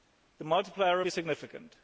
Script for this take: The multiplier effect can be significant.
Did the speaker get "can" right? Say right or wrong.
wrong